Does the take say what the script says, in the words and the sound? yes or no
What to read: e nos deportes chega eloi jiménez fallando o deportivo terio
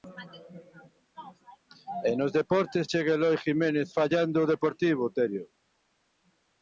yes